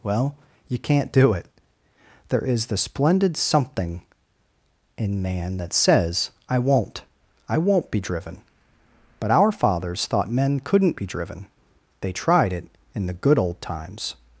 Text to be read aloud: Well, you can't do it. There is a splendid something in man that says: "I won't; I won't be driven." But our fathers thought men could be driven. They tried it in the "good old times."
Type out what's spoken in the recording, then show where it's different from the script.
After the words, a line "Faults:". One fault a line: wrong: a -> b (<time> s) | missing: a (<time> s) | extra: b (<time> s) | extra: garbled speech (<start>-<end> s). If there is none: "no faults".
Well, you can't do it. There is the splendid something in man that says: "I won't; I won't be driven." But our fathers thought men couldn't be driven. They tried it in the "good old times."
Faults:
wrong: a -> the (2.7 s)
wrong: could -> couldn't (10.6 s)